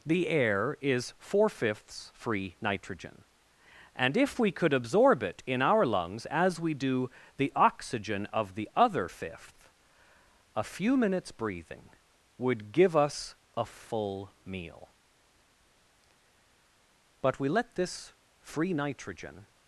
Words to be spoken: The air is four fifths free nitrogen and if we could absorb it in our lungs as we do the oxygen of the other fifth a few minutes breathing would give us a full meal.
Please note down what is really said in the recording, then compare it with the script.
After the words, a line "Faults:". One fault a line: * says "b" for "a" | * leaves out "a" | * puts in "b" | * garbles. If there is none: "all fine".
The air is four fifths free nitrogen and if we could absorb it in our lungs as we do the oxygen of the other fifth a few minutes breathing would give us a full meal. But we let this free nitrogen
Faults:
* puts in "But we let this free nitrogen"